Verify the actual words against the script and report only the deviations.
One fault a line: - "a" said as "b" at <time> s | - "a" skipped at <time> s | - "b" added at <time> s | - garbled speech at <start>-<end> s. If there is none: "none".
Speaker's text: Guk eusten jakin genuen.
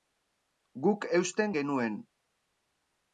- "jakin" skipped at 1.5 s